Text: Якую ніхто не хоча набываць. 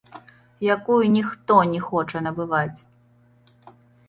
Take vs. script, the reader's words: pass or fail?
pass